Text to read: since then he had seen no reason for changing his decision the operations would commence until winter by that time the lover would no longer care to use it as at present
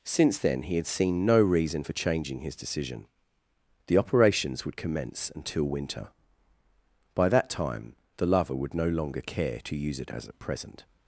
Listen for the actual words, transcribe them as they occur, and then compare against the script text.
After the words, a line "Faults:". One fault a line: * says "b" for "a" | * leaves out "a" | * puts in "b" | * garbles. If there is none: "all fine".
since then he had seen no reason for changing his decision the operations would commence until winter by that time the lover would no longer care to use it as at present
Faults:
all fine